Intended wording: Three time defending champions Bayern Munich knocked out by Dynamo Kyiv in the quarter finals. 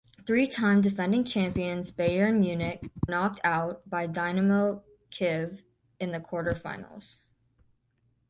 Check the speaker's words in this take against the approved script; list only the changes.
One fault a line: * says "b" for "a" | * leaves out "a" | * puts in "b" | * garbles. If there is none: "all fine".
all fine